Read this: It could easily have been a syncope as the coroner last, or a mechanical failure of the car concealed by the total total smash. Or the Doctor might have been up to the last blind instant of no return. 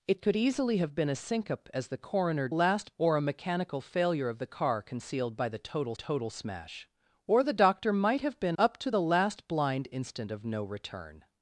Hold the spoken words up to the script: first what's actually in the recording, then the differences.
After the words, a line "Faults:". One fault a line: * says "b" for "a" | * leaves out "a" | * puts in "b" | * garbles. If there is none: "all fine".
It could easily have been a syncope as the coroner last, or a mechanical failure of the car concealed by the total total smash. Or the Doctor might have been up to the last blind instant of no return.
Faults:
all fine